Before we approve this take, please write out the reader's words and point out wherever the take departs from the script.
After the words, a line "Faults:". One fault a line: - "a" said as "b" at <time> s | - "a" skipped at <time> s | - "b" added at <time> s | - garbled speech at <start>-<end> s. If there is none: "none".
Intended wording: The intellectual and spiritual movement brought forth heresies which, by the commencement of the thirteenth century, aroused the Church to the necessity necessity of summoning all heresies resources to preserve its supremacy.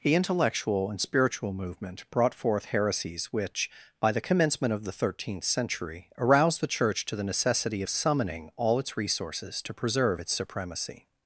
The intellectual and spiritual movement brought forth heresies which, by the commencement of the thirteenth century, aroused the Church to the necessity of summoning all its resources to preserve its supremacy.
Faults:
- "necessity" skipped at 7.8 s
- "heresies" said as "its" at 8.8 s